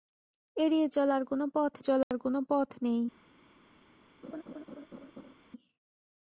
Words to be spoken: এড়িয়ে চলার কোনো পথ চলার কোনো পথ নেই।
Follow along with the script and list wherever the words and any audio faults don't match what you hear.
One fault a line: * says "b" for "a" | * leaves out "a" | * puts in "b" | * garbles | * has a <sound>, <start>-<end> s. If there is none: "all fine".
* has a dropout, 2.0-2.1 s
* has a laugh, 4.2-5.3 s